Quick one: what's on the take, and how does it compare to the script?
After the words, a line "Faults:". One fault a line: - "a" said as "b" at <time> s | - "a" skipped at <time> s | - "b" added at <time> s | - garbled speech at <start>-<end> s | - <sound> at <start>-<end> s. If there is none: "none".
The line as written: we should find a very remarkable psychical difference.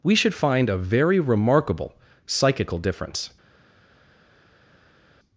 we should find a very remarkable psychical difference.
Faults:
none